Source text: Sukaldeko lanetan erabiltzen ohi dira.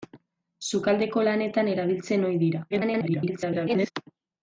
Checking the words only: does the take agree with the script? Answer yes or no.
no